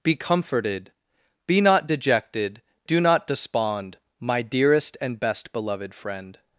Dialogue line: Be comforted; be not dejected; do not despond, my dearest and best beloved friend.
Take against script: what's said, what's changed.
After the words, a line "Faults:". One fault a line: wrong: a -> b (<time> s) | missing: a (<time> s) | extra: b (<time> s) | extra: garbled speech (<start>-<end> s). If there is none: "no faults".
Be comforted; be not dejected; do not despond, my dearest and best beloved friend.
Faults:
no faults